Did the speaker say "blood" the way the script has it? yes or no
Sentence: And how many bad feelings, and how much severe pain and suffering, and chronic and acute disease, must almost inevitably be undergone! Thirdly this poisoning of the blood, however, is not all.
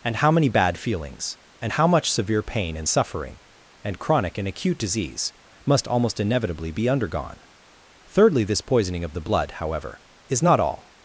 yes